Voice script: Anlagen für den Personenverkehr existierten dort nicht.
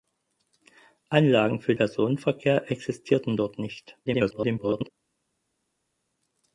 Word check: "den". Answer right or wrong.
wrong